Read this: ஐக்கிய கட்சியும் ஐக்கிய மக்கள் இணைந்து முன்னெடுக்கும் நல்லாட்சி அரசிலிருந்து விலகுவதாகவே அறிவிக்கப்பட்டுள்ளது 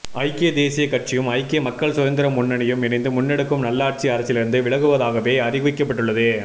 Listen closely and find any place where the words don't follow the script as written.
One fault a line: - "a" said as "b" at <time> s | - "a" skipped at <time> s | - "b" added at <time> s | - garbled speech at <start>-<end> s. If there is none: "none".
- "தேசியக்" added at 0.5 s
- "சுதந்திர முன்னணியும்" added at 1.9 s